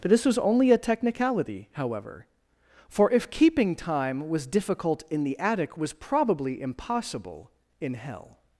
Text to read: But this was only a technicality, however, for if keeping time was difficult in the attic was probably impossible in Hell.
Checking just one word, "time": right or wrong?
right